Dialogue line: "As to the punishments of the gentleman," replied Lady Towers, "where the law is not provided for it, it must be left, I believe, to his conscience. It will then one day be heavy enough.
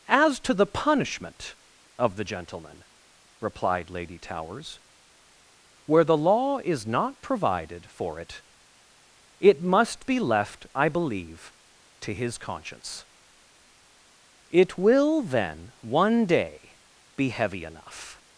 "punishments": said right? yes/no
no